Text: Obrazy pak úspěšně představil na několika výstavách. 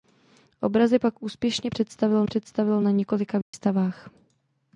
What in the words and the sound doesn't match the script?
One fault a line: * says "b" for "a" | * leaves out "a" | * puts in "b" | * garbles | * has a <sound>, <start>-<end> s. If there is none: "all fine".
* puts in "představil"
* has a dropout, 3.4-3.5 s